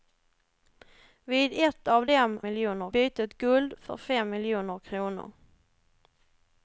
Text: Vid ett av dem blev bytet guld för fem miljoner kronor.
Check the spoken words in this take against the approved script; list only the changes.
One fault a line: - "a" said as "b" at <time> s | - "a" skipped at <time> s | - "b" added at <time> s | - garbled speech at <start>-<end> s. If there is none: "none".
- "blev" said as "miljoner" at 2.4 s